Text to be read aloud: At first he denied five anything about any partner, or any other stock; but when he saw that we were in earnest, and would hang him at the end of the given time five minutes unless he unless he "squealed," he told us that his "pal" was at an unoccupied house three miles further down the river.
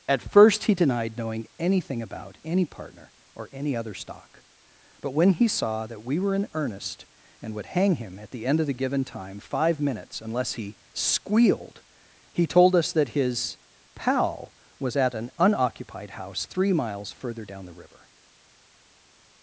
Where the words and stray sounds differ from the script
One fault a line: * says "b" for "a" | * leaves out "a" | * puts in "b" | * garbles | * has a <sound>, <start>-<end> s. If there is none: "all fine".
* says "knowing" for "five"
* leaves out "unless he"